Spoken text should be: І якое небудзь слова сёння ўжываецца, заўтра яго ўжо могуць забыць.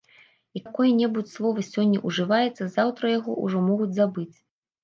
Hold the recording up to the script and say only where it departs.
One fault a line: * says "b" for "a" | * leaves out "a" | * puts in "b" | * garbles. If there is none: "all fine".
all fine